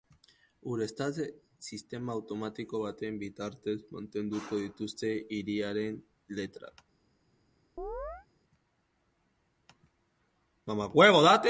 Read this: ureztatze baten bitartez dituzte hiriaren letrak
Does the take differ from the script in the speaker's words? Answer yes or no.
yes